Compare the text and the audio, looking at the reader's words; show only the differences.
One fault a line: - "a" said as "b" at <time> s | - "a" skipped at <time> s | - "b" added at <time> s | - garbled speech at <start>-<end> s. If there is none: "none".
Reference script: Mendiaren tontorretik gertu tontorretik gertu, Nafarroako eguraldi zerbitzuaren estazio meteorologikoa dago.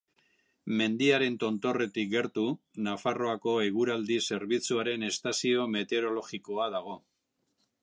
- "tontorretik gertu" skipped at 2.4 s